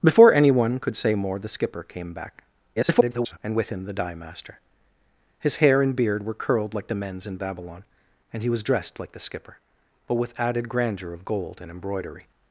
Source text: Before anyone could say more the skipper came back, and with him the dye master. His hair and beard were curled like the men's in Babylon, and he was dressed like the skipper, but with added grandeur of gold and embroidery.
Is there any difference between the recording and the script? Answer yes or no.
yes